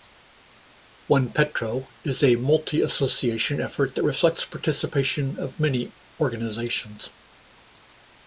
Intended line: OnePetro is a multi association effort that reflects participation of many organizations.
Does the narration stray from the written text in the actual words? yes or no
no